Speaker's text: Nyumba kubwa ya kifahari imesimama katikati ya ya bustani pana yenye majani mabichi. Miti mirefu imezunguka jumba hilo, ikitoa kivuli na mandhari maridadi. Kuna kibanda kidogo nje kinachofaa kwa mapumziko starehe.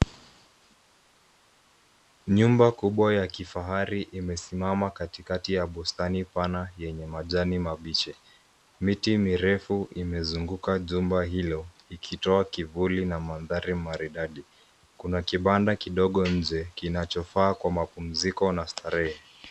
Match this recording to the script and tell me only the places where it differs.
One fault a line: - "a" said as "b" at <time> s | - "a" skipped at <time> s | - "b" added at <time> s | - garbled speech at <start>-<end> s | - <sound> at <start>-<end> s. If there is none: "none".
- "ya" skipped at 5.7 s
- "na" added at 18.5 s